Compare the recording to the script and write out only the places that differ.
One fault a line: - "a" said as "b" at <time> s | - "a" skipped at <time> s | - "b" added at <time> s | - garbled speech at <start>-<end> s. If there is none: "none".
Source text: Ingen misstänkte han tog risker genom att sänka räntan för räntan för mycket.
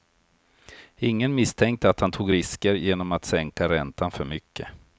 - "att" added at 1.9 s
- "räntan för" skipped at 4.3 s